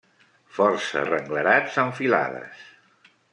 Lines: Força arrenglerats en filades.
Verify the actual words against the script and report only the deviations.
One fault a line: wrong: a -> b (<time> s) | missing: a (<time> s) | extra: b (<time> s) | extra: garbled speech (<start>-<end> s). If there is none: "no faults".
no faults